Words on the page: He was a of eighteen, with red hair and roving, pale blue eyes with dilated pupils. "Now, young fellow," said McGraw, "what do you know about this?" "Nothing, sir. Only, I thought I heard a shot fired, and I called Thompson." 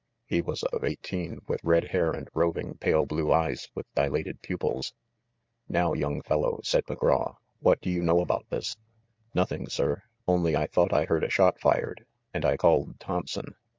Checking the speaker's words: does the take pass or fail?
pass